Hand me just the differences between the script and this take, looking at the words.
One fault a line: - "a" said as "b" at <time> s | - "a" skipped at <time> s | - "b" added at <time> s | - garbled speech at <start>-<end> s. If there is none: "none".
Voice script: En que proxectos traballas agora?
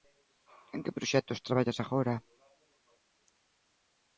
none